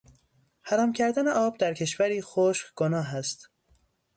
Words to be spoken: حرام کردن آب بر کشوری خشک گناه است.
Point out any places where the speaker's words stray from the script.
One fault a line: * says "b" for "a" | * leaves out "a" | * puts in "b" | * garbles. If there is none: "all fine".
* says "در" for "بر"